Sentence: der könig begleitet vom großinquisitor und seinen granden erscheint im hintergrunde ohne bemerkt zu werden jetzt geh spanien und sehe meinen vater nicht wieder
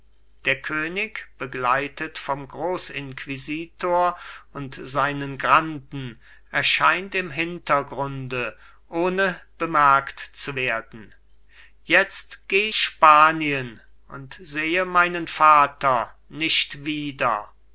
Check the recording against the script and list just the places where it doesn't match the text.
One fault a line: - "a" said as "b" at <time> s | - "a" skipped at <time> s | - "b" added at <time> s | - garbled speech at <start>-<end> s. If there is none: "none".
none